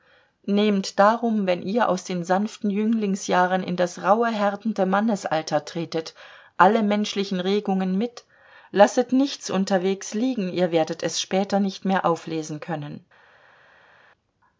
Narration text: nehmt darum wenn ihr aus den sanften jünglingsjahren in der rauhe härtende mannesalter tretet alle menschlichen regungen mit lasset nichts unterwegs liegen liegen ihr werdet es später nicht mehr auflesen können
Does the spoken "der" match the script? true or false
false